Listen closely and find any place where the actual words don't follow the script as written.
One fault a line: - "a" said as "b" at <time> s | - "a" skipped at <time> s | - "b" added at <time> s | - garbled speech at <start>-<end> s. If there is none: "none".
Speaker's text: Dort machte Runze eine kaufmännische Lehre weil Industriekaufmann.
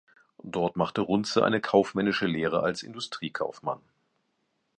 - "weil" said as "als" at 2.6 s